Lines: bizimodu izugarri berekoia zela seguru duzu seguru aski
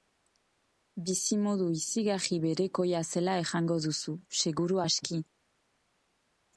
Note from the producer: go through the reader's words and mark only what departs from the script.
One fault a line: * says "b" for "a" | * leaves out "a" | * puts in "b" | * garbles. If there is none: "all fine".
* says "esango" for "seguru"